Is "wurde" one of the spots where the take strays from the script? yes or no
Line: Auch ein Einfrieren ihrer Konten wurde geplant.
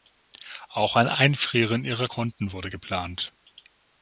no